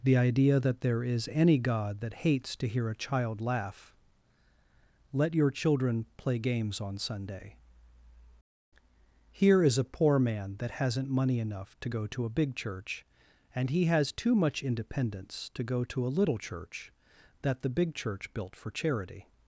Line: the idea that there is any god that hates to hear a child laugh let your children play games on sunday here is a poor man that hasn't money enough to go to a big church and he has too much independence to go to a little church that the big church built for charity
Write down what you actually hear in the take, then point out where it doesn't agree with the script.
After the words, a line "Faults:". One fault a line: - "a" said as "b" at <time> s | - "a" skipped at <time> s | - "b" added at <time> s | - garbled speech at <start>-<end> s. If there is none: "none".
the idea that there is any god that hates to hear a child laugh let your children play games on sunday here is a poor man that hasn't money enough to go to a big church and he has too much independence to go to a little church that the big church built for charity
Faults:
none